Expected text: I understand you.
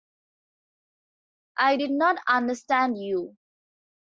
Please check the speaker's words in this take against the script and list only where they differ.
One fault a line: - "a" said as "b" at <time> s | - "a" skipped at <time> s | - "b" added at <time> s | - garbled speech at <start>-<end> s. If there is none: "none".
- "did not" added at 1.7 s